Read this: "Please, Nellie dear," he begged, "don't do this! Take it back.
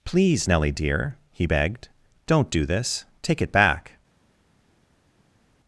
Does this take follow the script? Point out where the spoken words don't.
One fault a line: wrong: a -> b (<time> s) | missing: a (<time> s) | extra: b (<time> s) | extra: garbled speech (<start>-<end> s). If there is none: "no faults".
no faults